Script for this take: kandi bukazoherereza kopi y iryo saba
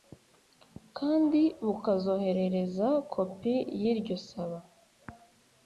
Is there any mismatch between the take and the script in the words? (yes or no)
no